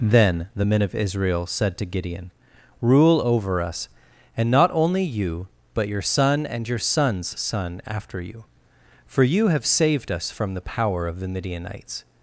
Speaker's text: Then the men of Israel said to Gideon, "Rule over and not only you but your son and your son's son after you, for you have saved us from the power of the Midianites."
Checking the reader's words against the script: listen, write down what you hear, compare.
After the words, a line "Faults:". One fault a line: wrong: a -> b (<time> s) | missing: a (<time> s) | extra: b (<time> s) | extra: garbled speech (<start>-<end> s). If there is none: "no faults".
Then the men of Israel said to Gideon, "Rule over us, and not only you but your son and your son's son after you, for you have saved us from the power of the Midianites."
Faults:
extra: us (3.6 s)